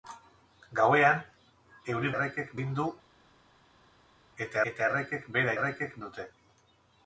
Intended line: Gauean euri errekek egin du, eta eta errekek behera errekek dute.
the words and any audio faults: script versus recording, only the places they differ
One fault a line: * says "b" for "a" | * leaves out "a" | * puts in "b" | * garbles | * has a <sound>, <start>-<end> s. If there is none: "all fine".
all fine